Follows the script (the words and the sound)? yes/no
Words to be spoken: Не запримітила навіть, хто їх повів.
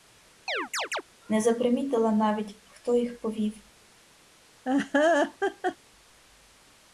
no